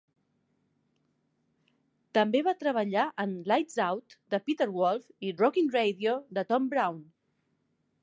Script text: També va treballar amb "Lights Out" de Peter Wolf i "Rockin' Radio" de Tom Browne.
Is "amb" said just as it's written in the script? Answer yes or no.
no